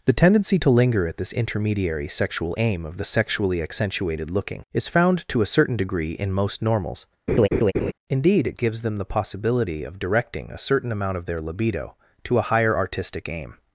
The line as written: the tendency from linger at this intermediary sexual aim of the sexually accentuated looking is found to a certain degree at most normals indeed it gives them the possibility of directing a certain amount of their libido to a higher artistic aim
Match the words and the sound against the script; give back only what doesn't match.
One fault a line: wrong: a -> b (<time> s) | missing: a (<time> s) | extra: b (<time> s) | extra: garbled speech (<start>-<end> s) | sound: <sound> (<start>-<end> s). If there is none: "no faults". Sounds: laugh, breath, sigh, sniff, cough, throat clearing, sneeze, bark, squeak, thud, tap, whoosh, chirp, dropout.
wrong: from -> to (0.6 s)
wrong: at -> in (6.1 s)
sound: laugh (7.3-7.9 s)